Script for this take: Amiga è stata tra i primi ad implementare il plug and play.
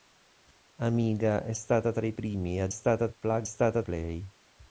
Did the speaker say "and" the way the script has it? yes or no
no